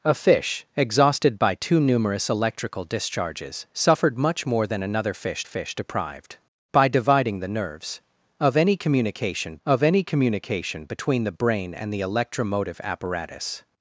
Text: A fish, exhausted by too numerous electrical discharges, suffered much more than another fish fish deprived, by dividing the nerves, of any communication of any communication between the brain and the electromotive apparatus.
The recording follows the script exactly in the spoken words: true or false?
true